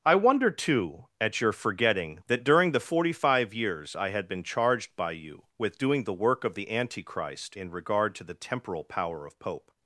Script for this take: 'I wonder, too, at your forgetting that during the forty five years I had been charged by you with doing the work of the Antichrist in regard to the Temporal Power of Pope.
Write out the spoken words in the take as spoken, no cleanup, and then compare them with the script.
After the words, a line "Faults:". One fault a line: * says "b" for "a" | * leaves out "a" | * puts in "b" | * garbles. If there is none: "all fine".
'I wonder, too, at your forgetting that during the forty five years I had been charged by you with doing the work of the Antichrist in regard to the Temporal Power of Pope.
Faults:
all fine